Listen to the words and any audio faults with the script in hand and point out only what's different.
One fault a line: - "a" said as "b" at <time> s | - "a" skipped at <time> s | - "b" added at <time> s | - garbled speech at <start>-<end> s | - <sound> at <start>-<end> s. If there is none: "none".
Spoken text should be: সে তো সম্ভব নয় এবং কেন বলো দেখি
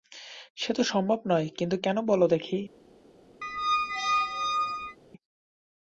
- "এবং" said as "কিন্তু" at 1.6 s
- squeak at 3.4-5.0 s